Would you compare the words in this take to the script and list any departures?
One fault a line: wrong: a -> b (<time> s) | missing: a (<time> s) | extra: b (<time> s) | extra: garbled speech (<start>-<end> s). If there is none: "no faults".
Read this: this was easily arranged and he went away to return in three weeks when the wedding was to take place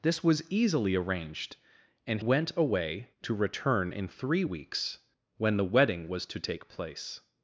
missing: he (2.2 s)